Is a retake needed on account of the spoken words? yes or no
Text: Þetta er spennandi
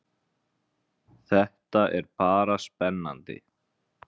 yes